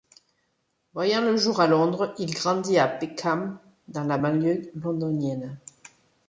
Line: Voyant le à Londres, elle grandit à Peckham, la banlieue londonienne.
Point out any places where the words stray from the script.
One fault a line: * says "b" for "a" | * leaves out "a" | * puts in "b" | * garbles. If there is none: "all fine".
* puts in "jour"
* says "il" for "elle"
* puts in "dans"